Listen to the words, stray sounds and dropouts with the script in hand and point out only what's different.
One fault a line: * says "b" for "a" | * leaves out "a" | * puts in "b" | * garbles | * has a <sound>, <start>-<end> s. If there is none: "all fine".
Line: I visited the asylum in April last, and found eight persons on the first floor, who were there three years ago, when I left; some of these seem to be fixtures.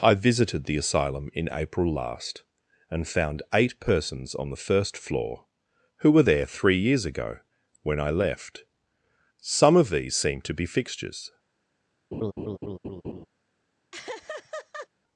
* has a laugh, 12.1-13.3 s
* has a laugh, 13.9-14.9 s